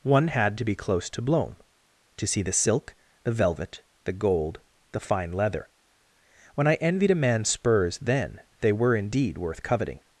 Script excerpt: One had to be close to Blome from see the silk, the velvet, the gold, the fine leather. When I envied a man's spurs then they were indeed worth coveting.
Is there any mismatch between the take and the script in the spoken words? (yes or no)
yes